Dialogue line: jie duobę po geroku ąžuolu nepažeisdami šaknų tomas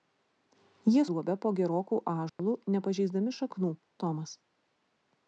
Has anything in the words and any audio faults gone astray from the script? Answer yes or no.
yes